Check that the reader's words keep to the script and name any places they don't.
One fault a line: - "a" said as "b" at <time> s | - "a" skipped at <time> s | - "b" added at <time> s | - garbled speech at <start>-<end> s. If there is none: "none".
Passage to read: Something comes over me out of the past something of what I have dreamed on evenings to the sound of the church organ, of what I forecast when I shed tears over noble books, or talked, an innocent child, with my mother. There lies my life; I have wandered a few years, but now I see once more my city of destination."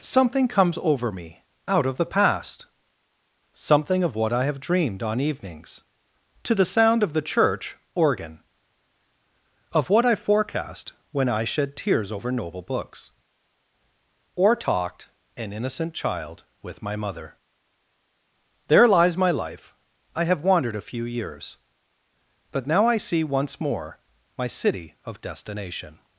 none